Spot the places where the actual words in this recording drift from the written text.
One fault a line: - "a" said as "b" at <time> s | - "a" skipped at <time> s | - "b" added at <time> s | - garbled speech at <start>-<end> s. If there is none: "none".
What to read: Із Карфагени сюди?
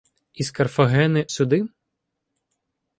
none